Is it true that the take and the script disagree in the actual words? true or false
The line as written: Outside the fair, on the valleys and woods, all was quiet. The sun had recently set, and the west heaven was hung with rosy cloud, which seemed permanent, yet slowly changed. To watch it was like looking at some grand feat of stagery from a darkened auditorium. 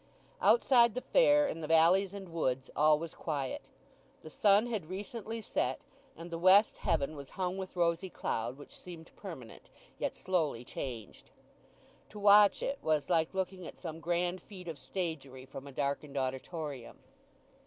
true